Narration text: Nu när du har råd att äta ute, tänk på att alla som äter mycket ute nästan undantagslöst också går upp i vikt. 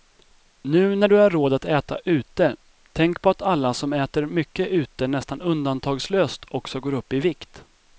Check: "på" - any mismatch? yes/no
no